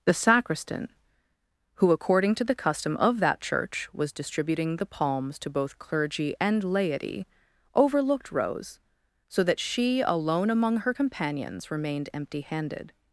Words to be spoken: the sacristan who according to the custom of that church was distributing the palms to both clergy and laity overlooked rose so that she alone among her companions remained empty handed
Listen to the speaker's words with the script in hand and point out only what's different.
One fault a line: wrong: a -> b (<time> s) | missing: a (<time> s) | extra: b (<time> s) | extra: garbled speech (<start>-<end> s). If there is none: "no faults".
no faults